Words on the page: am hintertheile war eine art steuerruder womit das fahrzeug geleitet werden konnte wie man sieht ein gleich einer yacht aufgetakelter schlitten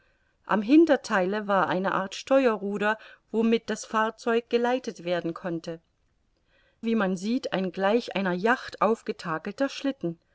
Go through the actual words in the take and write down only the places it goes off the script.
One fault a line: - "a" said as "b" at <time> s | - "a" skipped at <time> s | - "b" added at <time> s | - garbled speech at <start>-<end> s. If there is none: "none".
none